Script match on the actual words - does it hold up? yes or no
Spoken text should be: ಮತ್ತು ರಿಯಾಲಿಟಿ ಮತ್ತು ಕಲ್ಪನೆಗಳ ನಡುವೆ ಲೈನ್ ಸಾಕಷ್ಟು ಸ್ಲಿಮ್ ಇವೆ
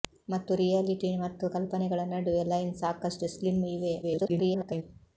no